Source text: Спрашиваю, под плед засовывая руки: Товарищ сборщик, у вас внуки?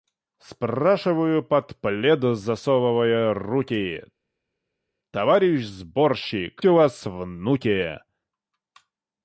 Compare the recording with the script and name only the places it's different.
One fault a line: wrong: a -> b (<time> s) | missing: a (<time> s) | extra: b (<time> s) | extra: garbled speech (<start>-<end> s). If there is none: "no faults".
no faults